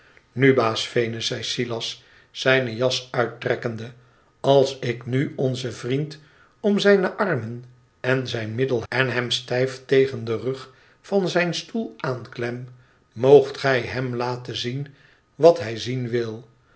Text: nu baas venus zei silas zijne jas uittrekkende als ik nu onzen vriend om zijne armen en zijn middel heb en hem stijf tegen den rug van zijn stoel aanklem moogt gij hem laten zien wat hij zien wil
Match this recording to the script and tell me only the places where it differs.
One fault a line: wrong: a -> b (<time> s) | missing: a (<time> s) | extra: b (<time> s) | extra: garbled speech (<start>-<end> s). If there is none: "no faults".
missing: heb (8.8 s)